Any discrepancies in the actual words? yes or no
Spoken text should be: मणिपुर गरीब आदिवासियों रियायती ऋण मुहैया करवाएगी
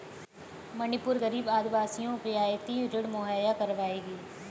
no